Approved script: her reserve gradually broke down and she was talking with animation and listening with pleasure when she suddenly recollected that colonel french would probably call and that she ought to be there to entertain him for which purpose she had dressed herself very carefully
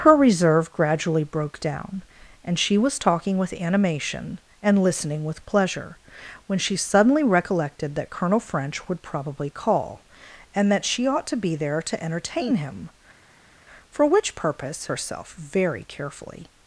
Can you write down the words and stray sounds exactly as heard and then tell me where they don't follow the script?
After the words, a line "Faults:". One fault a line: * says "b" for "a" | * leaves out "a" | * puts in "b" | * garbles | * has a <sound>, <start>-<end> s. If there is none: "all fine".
her reserve gradually broke down and she was talking with animation and listening with pleasure when she suddenly recollected that colonel french would probably call and that she ought to be there to entertain him for which purpose herself very carefully
Faults:
* leaves out "she had dressed"